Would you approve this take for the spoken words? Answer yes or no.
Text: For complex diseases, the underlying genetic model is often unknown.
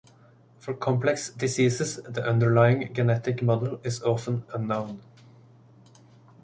yes